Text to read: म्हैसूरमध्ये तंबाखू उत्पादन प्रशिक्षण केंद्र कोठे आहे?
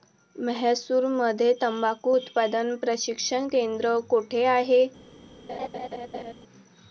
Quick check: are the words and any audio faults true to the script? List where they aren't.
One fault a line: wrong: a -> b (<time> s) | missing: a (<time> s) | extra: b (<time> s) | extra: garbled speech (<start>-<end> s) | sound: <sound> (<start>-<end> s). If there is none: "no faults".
sound: laugh (5.5-6.3 s)